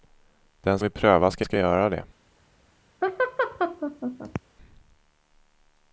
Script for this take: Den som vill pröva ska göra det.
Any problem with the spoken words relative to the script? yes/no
yes